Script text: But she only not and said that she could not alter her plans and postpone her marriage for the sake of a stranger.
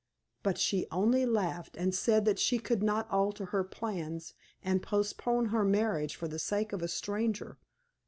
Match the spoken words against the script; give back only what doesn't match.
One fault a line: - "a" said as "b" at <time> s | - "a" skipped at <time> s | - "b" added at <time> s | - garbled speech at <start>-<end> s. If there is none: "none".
- "not" said as "laughed" at 1.3 s